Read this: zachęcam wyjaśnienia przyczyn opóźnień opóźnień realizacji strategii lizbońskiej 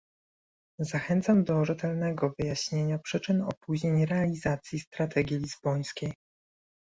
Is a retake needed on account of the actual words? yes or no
yes